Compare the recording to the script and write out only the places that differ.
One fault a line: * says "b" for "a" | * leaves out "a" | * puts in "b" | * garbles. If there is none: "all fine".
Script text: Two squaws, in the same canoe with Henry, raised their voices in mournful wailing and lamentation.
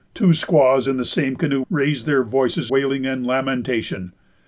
* leaves out "with Henry"
* leaves out "in mournful"